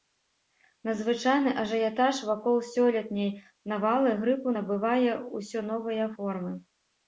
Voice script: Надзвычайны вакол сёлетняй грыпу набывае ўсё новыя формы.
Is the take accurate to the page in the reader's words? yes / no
no